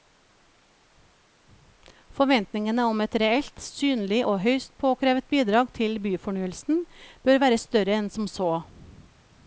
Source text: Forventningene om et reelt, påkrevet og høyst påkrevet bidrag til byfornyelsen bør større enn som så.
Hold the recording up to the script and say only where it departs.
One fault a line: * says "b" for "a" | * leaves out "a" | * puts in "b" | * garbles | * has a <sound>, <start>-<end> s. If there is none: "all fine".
* says "synlig" for "påkrevet"
* puts in "være"